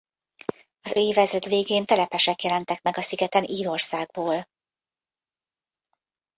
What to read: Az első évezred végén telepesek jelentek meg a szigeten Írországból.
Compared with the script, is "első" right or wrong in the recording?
wrong